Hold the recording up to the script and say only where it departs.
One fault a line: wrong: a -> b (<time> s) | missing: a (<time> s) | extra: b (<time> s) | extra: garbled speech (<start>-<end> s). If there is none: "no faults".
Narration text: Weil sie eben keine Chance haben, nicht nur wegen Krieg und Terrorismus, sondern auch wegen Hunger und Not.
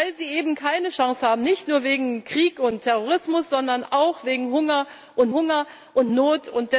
extra: Hunger und (5.3 s)